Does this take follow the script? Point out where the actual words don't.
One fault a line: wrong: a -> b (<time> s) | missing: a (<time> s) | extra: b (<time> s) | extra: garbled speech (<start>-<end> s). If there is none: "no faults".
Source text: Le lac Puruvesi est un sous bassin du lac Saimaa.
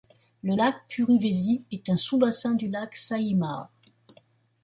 no faults